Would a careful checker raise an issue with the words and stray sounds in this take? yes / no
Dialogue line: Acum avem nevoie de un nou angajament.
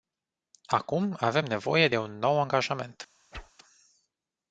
yes